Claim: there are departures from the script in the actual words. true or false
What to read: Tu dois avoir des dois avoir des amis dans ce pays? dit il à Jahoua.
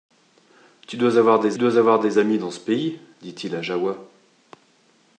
false